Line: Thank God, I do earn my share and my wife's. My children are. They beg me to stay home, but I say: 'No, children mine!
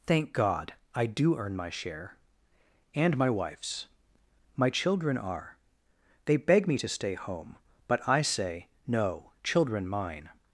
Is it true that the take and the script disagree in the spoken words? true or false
false